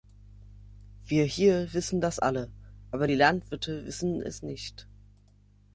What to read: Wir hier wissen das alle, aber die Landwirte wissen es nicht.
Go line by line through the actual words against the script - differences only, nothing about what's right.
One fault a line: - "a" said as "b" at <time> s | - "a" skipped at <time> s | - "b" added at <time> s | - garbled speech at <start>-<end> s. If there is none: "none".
none